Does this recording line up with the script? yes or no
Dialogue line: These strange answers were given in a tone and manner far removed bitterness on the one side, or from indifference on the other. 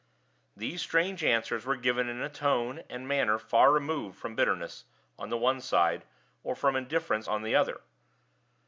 no